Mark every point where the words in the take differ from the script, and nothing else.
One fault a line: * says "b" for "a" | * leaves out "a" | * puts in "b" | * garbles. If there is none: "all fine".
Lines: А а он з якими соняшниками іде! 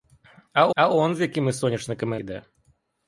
all fine